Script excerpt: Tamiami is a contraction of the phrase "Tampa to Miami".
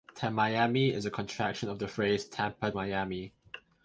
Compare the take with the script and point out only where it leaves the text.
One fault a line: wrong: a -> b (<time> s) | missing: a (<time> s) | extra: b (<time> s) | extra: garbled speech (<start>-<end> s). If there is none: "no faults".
missing: to (2.7 s)